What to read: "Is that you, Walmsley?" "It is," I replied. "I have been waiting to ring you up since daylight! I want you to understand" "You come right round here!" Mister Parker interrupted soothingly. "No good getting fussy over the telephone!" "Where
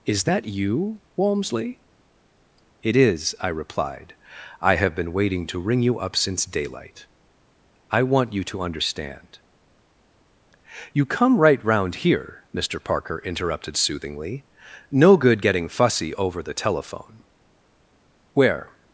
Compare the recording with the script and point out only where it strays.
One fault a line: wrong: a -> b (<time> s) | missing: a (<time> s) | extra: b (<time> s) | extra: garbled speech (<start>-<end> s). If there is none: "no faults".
no faults